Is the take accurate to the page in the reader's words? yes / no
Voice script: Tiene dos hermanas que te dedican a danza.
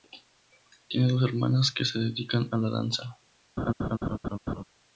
no